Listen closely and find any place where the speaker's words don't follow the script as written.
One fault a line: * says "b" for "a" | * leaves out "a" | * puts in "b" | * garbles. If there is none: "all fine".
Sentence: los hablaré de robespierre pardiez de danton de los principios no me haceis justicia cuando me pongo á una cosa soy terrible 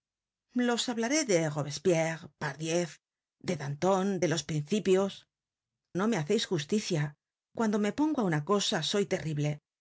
all fine